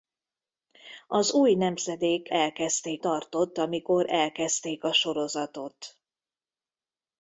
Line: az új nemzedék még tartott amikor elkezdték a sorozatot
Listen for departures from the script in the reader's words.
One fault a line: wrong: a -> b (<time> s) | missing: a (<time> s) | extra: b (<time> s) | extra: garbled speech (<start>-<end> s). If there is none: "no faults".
wrong: még -> elkezdték (2.3 s)